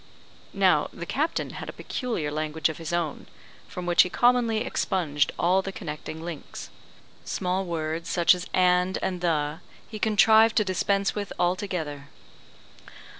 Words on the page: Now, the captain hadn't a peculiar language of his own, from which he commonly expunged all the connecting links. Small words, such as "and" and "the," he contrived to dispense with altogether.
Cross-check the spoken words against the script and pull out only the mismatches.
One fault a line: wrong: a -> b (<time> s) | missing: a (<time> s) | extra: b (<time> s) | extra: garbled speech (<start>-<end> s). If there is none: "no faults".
wrong: hadn't -> had (1.5 s)